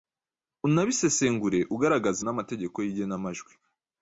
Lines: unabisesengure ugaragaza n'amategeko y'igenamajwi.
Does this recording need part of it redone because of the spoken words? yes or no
no